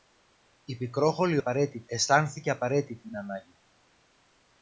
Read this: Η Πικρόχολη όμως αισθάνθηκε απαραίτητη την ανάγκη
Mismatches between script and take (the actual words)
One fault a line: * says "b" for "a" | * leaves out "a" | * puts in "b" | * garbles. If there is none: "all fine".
* says "απαραίτητη" for "όμως"
* puts in "την"